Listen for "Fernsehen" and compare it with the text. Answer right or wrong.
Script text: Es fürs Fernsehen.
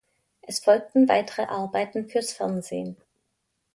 right